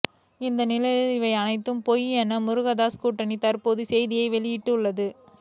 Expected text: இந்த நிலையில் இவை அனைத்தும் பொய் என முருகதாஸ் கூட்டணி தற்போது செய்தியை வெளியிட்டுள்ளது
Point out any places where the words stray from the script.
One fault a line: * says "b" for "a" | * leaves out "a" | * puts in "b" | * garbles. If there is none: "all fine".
all fine